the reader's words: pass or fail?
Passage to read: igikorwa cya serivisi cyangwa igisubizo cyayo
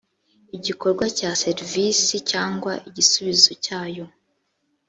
pass